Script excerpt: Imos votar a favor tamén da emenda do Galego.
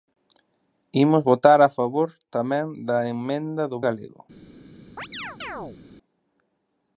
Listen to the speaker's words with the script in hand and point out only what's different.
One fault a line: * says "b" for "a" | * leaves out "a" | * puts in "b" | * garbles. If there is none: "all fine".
all fine